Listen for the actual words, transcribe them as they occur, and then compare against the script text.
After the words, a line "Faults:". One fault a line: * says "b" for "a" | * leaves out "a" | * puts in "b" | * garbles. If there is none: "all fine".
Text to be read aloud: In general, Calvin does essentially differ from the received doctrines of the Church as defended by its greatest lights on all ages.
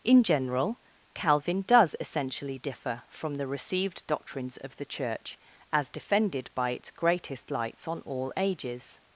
In general, Calvin does essentially differ from the received doctrines of the Church as defended by its greatest lights on all ages.
Faults:
all fine